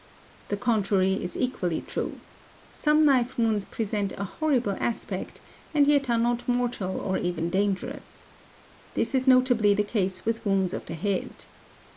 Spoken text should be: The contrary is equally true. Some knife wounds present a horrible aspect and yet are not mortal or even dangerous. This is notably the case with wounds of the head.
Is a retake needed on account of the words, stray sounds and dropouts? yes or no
no